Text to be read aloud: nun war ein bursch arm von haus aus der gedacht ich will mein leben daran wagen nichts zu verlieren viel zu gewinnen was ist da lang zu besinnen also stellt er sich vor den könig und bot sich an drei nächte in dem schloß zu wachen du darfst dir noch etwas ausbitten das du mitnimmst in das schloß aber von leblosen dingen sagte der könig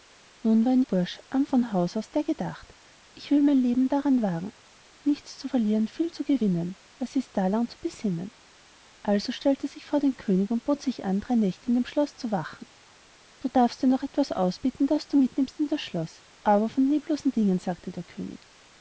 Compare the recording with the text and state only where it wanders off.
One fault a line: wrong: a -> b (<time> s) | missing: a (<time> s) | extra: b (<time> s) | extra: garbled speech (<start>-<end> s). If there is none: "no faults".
no faults